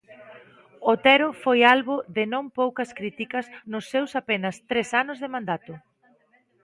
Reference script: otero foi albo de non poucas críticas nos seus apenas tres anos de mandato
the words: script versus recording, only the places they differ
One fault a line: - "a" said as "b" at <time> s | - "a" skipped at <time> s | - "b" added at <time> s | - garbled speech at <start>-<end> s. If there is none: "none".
none